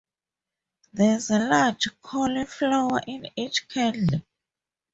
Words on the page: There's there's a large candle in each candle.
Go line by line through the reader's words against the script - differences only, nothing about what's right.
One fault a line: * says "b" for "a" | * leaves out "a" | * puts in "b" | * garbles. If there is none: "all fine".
* leaves out "there's"
* says "cauliflower" for "candle"